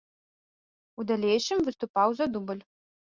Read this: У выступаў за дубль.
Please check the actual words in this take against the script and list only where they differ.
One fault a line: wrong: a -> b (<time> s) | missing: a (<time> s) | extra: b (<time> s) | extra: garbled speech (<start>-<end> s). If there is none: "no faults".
extra: далейшым (1.1 s)